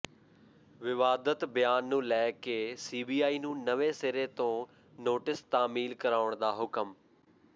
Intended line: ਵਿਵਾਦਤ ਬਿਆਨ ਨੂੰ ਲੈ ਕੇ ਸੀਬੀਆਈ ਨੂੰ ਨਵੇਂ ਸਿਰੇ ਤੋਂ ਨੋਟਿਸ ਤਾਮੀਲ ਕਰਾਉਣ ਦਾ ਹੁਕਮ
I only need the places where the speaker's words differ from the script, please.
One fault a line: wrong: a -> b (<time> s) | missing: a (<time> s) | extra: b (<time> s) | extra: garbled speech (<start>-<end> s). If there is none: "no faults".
no faults